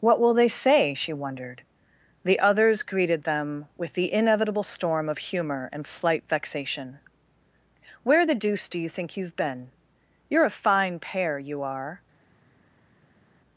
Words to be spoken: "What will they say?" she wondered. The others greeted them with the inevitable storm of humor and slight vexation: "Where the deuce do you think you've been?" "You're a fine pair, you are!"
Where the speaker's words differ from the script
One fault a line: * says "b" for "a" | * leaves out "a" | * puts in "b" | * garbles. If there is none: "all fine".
all fine